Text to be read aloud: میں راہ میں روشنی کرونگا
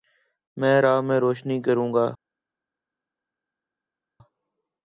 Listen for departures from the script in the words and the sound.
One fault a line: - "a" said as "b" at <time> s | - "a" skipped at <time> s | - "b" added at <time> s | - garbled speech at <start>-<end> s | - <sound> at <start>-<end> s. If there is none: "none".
none